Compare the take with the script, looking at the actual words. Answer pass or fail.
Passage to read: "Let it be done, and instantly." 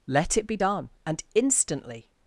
pass